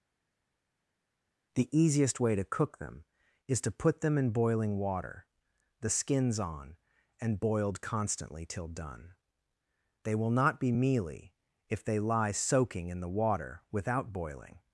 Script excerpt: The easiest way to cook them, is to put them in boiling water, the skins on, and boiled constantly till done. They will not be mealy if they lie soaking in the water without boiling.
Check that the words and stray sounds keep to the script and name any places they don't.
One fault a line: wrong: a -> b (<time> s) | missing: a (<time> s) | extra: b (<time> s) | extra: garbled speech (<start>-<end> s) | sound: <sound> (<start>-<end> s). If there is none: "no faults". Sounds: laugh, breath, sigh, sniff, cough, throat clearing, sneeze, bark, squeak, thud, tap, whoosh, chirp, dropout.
no faults